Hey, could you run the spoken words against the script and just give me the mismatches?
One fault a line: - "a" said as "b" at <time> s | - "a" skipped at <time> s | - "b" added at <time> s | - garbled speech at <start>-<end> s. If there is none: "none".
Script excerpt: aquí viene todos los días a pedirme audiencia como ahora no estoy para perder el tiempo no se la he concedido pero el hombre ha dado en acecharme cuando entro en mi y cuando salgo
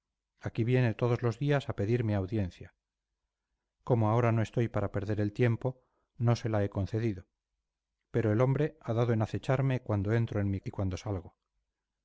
none